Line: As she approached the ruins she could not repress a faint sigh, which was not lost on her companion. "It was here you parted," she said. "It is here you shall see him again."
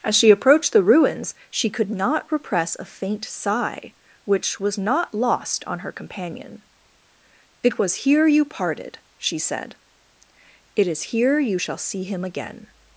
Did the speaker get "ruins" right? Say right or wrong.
right